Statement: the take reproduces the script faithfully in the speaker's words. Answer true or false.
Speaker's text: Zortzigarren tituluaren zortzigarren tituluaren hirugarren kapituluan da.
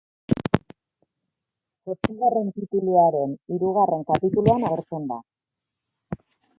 false